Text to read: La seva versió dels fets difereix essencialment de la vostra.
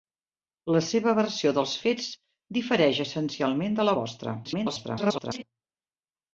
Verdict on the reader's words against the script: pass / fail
fail